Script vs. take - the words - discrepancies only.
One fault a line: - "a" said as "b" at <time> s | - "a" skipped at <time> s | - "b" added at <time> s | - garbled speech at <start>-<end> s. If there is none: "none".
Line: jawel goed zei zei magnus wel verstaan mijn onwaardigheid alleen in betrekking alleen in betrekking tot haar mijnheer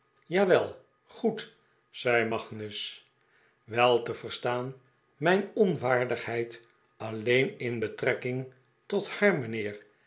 - "zei" skipped at 2.3 s
- "te" added at 4.0 s
- "alleen in betrekking" skipped at 8.5 s